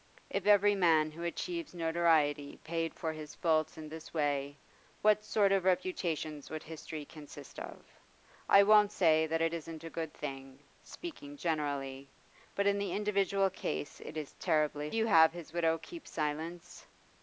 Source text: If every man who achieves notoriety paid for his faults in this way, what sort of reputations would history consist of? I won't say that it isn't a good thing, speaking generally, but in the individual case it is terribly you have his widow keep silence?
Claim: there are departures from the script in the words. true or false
false